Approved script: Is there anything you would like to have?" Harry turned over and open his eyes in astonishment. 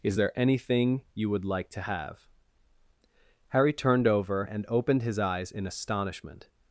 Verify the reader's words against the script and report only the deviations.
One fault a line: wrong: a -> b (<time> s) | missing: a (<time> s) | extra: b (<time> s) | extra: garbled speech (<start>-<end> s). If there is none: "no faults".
wrong: open -> opened (4.7 s)